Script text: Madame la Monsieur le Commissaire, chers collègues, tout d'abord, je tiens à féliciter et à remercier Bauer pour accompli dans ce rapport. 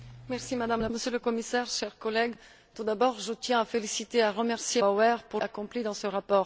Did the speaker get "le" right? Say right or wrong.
right